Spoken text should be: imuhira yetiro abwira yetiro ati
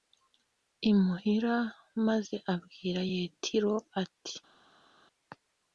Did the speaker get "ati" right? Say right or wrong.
right